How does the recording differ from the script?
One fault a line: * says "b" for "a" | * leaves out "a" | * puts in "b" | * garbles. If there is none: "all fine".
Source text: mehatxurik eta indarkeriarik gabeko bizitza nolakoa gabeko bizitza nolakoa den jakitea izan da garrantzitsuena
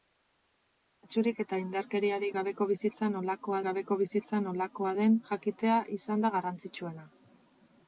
all fine